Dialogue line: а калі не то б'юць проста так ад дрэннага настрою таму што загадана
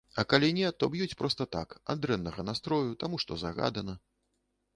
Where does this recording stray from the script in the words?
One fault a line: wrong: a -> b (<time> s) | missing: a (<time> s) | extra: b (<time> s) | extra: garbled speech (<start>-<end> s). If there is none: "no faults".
no faults